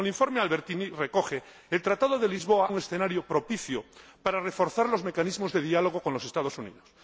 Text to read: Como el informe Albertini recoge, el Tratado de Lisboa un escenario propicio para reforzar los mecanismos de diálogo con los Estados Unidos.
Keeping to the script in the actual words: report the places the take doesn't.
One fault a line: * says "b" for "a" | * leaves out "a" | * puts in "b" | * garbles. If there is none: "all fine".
all fine